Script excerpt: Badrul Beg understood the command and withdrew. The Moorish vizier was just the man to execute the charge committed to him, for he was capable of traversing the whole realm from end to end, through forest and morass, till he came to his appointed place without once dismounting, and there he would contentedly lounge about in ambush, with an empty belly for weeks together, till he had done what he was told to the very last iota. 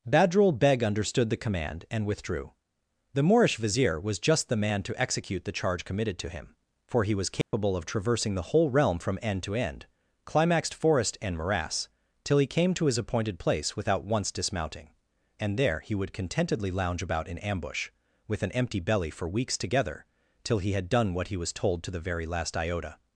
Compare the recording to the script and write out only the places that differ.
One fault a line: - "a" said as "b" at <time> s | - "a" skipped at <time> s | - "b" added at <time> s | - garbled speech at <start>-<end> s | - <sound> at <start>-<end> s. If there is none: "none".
- dropout at 7.4-7.5 s
- "through" said as "climaxed" at 10.2 s